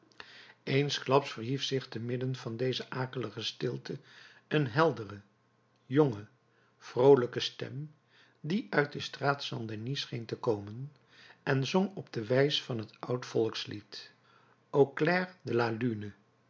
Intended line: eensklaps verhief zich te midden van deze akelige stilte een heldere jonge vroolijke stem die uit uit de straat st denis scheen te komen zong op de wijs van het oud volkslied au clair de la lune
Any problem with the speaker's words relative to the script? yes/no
yes